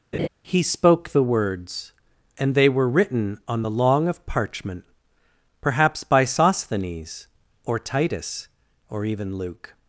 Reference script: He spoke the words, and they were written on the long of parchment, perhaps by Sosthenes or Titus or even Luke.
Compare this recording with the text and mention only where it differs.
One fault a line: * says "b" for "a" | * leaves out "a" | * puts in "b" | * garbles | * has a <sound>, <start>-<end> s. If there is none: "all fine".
* has a laugh, 0.1-0.3 s